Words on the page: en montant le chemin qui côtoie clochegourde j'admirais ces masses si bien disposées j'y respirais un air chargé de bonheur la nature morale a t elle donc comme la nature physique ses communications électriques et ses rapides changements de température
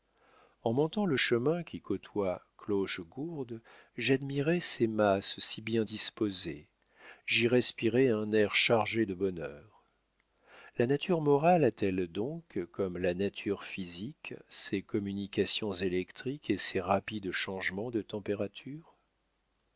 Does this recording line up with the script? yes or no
yes